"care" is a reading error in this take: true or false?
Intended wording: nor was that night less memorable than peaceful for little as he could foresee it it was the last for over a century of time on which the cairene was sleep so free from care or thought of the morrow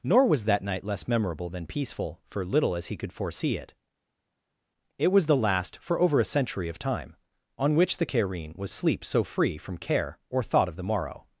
false